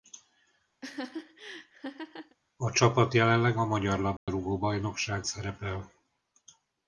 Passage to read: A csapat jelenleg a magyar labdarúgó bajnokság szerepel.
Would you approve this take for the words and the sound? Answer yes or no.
no